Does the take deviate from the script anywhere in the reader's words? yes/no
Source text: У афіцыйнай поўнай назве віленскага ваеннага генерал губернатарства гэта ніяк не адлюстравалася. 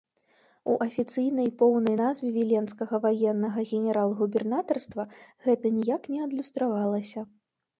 no